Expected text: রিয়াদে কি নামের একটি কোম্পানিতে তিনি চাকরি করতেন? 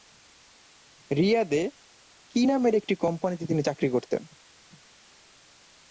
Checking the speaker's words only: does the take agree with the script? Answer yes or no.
yes